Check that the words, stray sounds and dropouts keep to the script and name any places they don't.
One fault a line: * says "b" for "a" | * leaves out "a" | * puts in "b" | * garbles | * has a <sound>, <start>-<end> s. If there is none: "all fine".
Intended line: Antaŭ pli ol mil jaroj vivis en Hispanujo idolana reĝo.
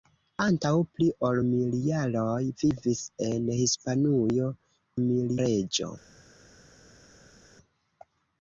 * says "mil" for "idolana"